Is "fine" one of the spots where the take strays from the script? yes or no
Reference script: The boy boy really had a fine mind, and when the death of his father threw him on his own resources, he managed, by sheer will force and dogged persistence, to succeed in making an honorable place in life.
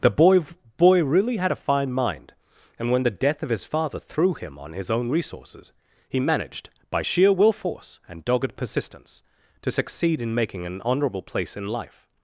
no